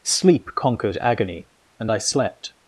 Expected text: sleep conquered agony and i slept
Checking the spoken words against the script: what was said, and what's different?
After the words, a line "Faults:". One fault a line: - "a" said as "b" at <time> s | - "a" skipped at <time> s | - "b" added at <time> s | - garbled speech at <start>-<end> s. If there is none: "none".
sleep conquered agony and i slept
Faults:
none